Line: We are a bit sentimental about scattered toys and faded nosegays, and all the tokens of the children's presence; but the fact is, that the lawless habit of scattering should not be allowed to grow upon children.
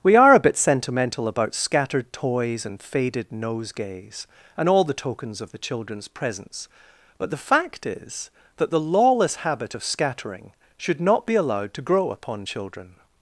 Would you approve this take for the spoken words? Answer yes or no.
yes